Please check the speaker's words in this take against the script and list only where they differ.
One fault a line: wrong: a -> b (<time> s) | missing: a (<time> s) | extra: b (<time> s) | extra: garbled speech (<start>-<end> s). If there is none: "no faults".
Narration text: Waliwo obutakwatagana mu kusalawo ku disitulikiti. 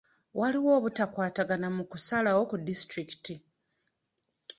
no faults